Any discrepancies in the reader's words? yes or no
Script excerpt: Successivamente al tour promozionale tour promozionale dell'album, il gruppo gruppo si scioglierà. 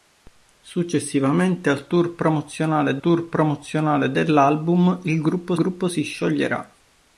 no